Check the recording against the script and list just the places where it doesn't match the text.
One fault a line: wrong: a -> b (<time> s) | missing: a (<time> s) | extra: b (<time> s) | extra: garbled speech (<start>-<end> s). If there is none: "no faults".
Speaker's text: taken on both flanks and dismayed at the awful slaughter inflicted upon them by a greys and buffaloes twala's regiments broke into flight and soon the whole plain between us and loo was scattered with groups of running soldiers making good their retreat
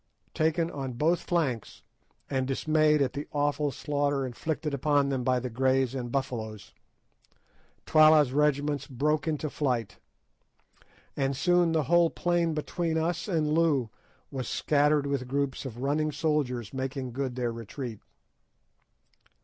wrong: a -> the (5.4 s)